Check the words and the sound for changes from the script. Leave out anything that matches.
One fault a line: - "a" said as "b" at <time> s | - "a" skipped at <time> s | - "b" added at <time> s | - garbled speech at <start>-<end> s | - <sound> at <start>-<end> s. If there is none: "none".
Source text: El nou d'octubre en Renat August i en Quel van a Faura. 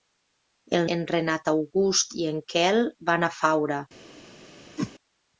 - "nou d'octubre" skipped at 0.9 s
- whoosh at 4.8-4.9 s